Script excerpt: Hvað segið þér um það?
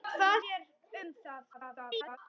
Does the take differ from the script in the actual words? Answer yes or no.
yes